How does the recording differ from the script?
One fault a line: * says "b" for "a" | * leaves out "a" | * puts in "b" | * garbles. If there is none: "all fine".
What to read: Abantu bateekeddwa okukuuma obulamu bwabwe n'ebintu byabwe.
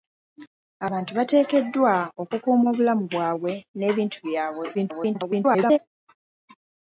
* garbles